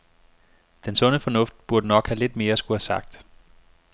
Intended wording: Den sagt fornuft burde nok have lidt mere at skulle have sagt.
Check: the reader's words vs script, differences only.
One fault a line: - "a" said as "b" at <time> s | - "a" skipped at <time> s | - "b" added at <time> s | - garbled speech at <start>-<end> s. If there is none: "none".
- "sagt" said as "sunde" at 0.9 s